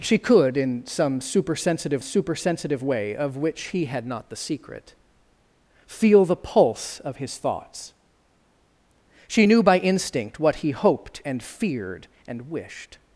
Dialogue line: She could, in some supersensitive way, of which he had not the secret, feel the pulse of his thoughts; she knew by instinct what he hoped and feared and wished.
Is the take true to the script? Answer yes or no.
no